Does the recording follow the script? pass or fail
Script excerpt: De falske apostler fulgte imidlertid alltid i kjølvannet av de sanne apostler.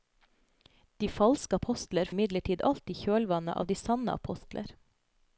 fail